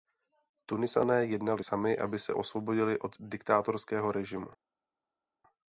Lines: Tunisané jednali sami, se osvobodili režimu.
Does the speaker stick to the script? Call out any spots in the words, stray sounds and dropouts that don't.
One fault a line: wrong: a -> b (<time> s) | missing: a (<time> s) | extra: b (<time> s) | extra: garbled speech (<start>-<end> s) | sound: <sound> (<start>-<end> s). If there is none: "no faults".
extra: aby (2.0 s)
extra: od diktátorského (3.0 s)